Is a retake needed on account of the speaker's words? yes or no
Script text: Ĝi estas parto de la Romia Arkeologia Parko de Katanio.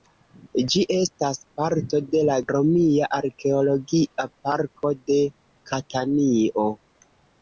no